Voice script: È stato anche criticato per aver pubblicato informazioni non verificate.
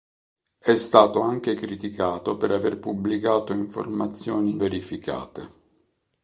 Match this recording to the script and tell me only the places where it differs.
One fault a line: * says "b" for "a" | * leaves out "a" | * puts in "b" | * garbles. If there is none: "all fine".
* leaves out "non"